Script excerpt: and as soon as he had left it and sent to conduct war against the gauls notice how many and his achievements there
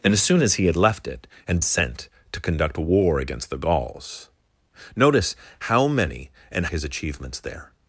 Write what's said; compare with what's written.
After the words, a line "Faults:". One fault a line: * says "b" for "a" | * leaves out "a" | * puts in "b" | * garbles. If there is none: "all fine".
and as soon as he had left it and sent to conduct war against the gauls notice how many and his achievements there
Faults:
all fine